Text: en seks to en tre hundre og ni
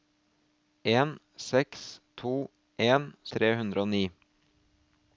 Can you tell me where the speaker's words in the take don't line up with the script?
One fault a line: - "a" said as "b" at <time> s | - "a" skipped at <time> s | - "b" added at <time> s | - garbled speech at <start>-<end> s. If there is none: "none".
none